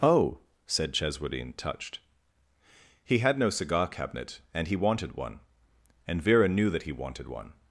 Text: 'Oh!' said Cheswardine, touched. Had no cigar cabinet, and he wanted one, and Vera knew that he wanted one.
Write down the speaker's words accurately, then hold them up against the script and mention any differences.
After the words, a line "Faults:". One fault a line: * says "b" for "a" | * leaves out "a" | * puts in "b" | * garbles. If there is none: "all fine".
'Oh!' said Cheswardine, touched. He had no cigar cabinet, and he wanted one, and Vera knew that he wanted one.
Faults:
* puts in "He"